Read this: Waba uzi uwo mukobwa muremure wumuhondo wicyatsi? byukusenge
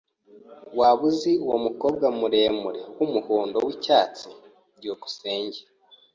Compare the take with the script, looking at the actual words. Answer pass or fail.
pass